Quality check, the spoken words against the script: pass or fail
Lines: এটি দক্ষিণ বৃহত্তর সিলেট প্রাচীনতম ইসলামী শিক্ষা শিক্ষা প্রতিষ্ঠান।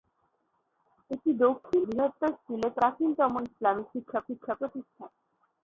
pass